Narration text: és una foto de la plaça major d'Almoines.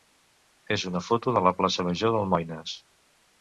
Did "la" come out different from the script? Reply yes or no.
no